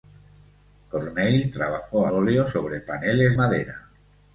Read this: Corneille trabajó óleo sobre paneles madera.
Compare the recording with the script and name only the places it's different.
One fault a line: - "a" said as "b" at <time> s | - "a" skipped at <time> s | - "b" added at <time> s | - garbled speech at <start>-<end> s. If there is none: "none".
none